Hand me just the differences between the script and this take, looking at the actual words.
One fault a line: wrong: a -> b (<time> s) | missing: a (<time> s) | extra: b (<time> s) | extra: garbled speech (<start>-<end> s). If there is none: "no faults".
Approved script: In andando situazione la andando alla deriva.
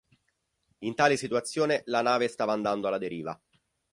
wrong: andando -> tale (0.9 s)
extra: nave stava (2.0 s)